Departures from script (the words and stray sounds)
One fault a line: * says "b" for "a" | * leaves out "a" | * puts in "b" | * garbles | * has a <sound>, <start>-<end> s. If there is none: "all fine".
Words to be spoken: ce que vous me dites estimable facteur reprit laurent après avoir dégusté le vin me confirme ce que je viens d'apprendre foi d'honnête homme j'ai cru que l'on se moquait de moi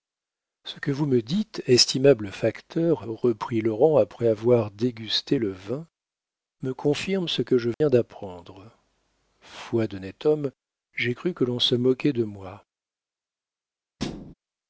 * has a dropout, 7.7-7.8 s
* has a thud, 14.0-14.3 s